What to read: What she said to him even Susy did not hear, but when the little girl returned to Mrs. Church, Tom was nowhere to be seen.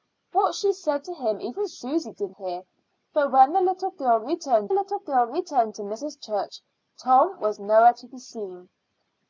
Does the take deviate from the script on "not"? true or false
true